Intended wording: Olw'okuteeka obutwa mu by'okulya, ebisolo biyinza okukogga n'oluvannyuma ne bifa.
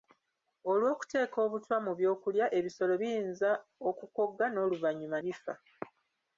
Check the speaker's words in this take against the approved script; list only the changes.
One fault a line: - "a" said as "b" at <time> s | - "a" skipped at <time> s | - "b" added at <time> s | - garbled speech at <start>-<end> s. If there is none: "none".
- "ne" skipped at 5.2 s